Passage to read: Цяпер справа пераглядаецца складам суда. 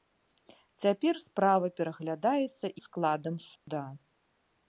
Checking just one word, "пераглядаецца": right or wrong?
right